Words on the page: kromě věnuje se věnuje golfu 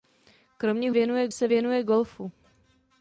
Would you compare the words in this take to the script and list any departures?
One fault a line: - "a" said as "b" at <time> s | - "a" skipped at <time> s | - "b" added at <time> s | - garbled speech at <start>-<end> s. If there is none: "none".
none